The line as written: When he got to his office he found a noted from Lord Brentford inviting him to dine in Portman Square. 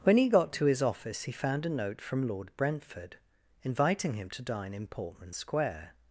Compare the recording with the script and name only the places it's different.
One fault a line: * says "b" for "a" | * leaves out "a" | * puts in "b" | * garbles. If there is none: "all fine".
* says "note" for "noted"